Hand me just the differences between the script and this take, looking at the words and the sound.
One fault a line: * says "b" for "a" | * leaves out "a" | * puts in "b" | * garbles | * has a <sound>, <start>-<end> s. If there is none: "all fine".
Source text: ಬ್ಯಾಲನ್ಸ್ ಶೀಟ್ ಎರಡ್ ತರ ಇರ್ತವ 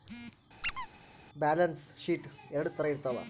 * has a squeak, 0.6-0.9 s